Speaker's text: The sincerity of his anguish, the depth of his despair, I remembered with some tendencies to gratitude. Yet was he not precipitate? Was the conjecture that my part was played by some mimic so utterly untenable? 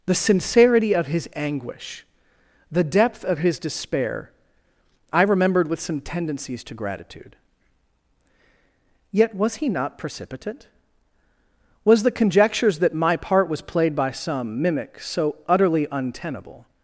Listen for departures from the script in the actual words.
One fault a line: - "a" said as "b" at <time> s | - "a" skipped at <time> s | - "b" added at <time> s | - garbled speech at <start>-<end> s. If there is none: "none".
- "conjecture" said as "conjectures" at 12.1 s